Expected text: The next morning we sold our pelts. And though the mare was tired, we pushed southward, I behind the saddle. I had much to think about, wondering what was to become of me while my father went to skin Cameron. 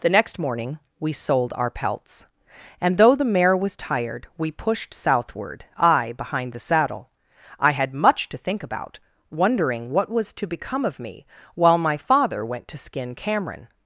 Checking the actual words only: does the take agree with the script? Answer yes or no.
yes